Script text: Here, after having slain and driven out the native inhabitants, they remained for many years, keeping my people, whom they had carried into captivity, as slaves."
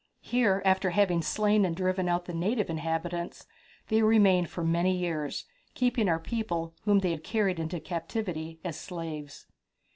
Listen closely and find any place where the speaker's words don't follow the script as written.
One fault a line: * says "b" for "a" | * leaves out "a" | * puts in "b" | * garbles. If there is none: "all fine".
* says "our" for "my"